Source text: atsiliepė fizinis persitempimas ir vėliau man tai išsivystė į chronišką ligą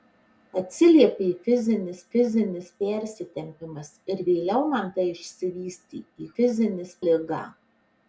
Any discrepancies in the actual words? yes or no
yes